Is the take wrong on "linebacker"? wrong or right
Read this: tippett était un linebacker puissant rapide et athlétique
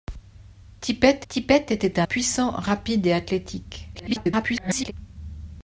wrong